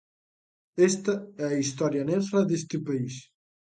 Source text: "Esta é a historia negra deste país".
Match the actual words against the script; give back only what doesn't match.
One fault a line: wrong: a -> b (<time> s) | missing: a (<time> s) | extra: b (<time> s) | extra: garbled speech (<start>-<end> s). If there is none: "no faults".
no faults